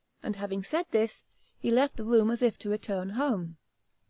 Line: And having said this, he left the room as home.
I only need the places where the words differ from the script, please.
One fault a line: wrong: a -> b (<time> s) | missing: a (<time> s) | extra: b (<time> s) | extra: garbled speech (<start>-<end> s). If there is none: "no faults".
extra: if to return (2.4 s)